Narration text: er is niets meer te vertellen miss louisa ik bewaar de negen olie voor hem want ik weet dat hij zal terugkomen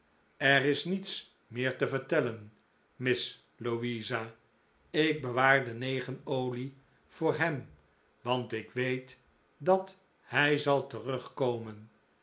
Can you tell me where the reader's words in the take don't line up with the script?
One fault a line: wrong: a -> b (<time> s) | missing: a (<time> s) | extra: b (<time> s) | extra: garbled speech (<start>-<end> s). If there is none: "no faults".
no faults